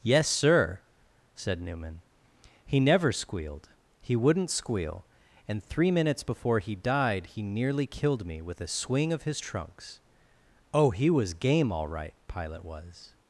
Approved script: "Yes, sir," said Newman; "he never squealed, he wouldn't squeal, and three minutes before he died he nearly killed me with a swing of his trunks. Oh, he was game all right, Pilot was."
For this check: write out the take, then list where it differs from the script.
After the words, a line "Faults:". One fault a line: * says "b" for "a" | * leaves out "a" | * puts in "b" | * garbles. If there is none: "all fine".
"Yes, sir," said Newman; "he never squealed, he wouldn't squeal, and three minutes before he died he nearly killed me with a swing of his trunks. Oh, he was game all right, Pilot was."
Faults:
all fine